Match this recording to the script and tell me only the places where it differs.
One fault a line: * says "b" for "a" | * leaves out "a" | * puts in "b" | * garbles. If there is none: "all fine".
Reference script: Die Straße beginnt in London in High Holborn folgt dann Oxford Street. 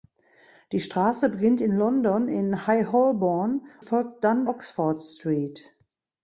all fine